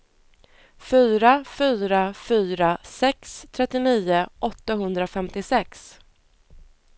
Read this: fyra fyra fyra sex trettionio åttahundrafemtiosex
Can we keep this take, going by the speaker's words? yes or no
yes